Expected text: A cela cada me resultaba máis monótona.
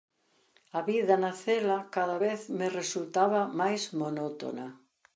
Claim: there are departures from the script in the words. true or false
true